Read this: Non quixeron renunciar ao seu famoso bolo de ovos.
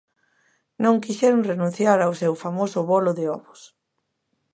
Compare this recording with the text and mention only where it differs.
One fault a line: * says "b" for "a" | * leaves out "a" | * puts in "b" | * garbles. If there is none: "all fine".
all fine